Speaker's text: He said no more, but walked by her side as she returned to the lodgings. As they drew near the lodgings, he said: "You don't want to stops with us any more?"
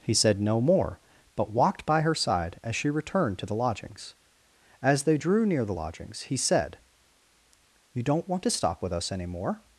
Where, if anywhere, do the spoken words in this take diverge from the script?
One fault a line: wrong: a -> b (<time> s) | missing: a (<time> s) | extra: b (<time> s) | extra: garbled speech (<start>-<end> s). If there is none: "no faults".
wrong: stops -> stop (8.5 s)